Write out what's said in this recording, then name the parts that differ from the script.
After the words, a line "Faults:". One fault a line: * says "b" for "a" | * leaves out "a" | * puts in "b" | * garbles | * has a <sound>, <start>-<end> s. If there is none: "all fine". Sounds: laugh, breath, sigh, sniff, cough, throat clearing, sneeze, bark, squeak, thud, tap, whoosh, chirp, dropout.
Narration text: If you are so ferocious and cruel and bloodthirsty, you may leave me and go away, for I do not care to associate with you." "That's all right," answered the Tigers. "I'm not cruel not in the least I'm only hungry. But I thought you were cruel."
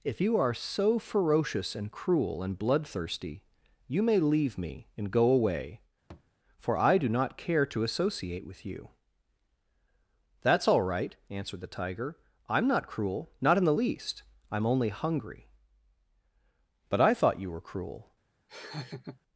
If you are so ferocious and cruel and bloodthirsty, you may leave me and go away, for I do not care to associate with you." "That's all right," answered the Tiger. "I'm not cruel not in the least I'm only hungry. But I thought you were cruel."
Faults:
* has a thud, 6.1-6.3 s
* says "Tiger" for "Tigers"
* has a laugh, 18.5-19.2 s